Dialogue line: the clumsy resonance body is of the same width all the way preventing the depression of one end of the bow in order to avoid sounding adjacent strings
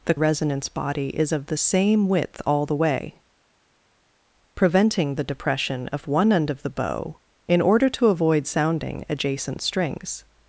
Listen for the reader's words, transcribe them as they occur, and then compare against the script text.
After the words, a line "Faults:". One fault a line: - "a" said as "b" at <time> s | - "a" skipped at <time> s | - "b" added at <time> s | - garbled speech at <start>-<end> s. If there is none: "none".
the resonance body is of the same width all the way preventing the depression of one end of the bow in order to avoid sounding adjacent strings
Faults:
- "clumsy" skipped at 0.1 s